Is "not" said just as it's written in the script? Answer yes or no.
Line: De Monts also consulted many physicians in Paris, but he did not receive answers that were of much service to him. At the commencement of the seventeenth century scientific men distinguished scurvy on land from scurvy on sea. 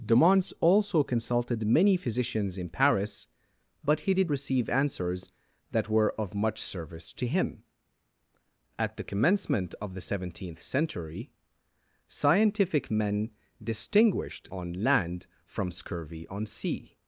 no